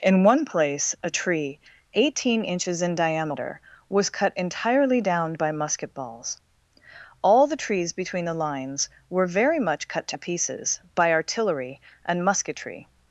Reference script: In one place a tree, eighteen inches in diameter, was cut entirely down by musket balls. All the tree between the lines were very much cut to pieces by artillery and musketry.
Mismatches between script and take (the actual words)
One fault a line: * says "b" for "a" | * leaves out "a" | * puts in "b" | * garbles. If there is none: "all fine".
* says "trees" for "tree"